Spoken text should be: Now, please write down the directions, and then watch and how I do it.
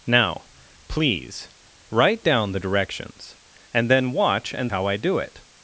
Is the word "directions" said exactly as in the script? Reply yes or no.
yes